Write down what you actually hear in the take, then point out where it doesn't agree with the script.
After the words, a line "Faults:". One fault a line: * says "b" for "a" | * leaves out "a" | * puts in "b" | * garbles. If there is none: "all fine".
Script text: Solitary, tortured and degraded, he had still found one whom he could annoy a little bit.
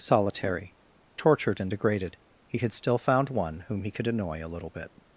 Solitary, tortured and degraded, he had still found one whom he could annoy a little bit.
Faults:
all fine